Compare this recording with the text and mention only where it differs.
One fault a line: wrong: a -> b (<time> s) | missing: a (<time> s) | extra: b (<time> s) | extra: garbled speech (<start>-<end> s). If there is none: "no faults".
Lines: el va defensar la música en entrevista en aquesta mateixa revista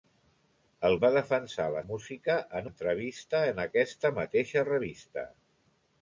no faults